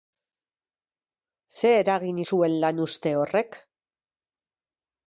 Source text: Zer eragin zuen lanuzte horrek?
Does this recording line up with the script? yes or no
yes